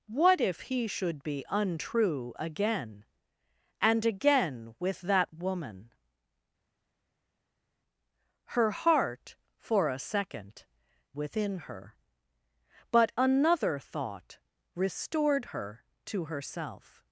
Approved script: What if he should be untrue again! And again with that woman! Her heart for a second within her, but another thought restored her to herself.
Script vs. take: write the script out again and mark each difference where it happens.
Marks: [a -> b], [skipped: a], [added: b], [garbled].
What if he should be untrue again! And again with that woman! Her heart for a second within her, but another thought restored her to herself.